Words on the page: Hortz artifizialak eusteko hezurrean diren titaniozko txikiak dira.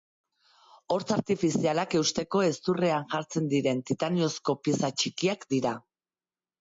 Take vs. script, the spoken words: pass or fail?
fail